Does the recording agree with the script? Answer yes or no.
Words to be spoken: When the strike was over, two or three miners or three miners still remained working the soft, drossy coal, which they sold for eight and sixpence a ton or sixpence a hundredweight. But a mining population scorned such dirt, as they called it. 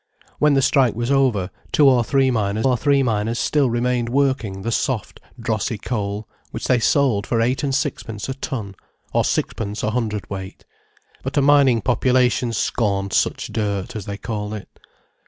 yes